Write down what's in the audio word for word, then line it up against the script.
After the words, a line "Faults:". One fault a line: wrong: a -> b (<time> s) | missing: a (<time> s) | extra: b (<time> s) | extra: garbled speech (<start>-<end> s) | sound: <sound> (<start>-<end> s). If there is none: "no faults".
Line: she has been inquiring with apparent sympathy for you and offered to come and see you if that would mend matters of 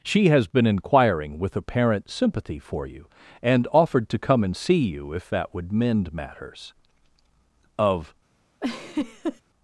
she has been inquiring with apparent sympathy for you and offered to come and see you if that would mend matters of
Faults:
sound: laugh (8.6-9.4 s)